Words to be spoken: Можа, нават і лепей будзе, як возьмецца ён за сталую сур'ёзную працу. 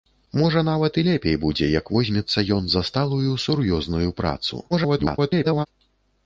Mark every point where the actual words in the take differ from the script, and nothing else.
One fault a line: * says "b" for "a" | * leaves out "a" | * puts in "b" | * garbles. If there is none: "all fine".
* garbles